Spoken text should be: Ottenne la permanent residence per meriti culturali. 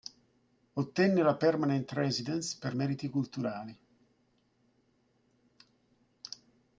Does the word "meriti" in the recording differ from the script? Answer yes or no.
no